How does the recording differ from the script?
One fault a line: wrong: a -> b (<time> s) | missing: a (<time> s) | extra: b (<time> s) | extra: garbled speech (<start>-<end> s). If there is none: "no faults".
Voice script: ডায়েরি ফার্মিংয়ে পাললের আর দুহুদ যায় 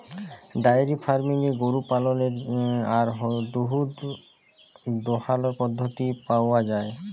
extra: গরু (1.6 s)
extra: দহালর পদ্ধতি পাউয়া (5.0 s)